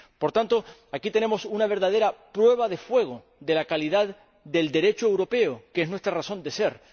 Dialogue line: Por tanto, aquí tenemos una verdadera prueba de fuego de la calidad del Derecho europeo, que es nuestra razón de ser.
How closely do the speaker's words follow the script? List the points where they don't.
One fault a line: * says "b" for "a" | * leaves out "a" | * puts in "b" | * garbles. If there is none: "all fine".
all fine